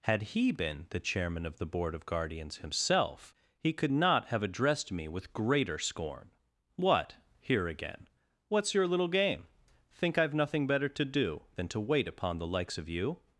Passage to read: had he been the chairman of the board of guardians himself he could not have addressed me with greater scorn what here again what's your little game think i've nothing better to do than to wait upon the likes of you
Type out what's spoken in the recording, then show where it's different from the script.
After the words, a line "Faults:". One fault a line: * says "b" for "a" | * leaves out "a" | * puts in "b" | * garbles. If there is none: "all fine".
had he been the chairman of the board of guardians himself he could not have addressed me with greater scorn what here again what's your little game think i've nothing better to do than to wait upon the likes of you
Faults:
all fine